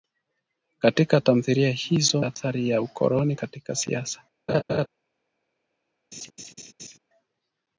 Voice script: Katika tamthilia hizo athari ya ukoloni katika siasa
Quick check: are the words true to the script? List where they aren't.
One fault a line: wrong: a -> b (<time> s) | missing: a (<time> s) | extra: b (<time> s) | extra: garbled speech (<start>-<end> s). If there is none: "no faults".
no faults